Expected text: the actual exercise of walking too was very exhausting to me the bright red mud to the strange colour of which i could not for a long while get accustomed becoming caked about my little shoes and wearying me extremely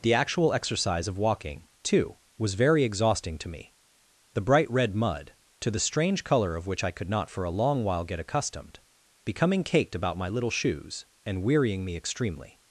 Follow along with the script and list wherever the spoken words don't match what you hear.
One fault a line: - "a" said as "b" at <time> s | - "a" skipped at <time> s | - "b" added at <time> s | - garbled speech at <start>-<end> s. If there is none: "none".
none